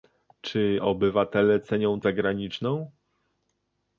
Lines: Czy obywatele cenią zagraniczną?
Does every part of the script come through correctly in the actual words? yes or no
yes